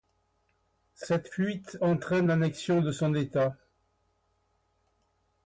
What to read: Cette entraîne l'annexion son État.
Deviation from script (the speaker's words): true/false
true